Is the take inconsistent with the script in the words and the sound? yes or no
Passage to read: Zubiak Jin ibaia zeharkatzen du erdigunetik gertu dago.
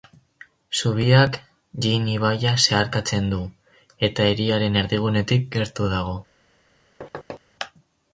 yes